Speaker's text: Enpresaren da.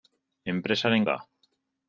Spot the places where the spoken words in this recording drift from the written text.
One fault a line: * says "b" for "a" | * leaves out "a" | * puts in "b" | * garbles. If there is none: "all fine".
all fine